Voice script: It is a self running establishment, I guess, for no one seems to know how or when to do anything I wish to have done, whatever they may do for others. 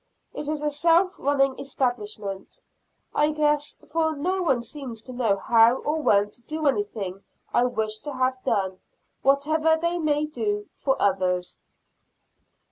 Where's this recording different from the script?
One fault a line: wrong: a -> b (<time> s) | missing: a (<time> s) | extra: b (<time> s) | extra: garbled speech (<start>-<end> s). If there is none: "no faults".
no faults